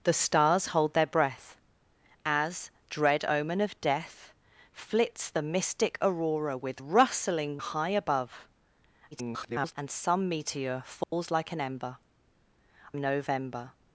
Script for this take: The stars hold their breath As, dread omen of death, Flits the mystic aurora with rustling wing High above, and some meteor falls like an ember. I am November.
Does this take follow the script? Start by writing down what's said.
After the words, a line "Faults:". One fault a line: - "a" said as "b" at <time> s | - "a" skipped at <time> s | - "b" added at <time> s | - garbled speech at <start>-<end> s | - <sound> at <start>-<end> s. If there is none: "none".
The stars hold their breath As, dread omen of death, Flits the mystic aurora with rustling High above, [garbled] and some meteor falls like an ember. November.
Faults:
- "wing" skipped at 7.6 s
- garbled speech at 9.1-9.7 s
- dropout at 11.0-11.1 s
- "I am" skipped at 12.0 s